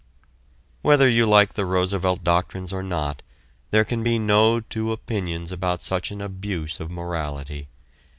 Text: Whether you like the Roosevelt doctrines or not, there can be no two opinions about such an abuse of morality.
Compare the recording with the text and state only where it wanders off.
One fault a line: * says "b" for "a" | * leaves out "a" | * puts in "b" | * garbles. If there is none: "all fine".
all fine